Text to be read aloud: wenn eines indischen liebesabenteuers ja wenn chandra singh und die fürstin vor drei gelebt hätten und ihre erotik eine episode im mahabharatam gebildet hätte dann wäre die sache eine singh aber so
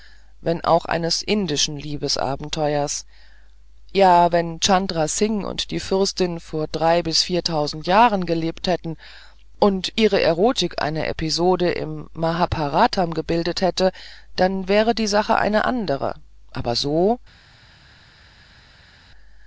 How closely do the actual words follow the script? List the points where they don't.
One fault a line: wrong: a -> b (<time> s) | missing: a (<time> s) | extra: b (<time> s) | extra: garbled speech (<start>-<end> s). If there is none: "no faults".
extra: auch (0.7 s)
extra: bis viertausend jahren (7.0 s)
wrong: singh -> andere (15.7 s)